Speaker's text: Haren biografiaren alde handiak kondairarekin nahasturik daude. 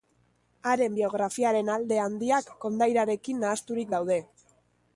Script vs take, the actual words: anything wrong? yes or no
no